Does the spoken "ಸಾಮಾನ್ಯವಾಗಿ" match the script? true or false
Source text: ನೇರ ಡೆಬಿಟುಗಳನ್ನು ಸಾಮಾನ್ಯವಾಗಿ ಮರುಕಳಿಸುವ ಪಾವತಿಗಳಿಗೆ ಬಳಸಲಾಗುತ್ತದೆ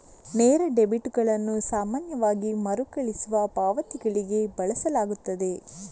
true